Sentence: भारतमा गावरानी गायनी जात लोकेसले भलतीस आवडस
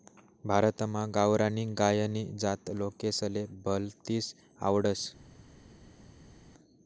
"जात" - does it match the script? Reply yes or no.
yes